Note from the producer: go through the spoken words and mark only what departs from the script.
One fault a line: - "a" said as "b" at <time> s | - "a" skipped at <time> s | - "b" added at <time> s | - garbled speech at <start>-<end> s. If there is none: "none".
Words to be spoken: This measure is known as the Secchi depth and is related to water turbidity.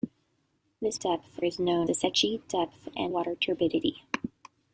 - "measure" said as "depth" at 1.0 s
- "as" skipped at 1.9 s
- "is related to" skipped at 3.1 s